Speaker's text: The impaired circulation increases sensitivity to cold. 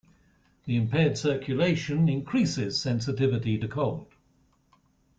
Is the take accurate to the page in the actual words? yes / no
yes